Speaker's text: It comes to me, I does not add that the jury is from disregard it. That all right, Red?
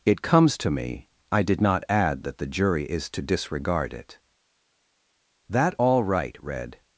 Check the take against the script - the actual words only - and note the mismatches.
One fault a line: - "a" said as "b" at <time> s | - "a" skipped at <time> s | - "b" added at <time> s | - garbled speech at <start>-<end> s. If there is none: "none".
- "does" said as "did" at 1.4 s
- "from" said as "to" at 3.1 s